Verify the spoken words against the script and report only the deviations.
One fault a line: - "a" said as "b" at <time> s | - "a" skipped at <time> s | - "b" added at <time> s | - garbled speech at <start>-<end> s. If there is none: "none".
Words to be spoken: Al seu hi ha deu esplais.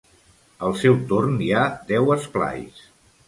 - "torn" added at 1.1 s